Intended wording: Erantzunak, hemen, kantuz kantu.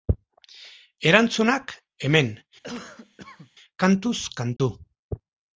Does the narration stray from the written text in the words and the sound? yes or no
yes